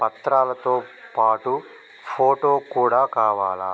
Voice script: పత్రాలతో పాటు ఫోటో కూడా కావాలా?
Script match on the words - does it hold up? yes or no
yes